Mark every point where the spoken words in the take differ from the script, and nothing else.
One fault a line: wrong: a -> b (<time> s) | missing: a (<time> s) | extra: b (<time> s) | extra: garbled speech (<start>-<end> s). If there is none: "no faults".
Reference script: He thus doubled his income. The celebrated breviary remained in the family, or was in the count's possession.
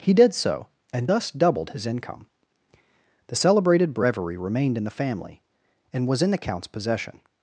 extra: did so and (0.1 s)
wrong: or -> and (5.9 s)